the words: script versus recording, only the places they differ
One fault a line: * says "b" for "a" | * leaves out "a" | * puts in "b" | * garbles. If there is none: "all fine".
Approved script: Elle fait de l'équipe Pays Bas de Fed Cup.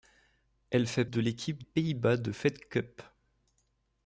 all fine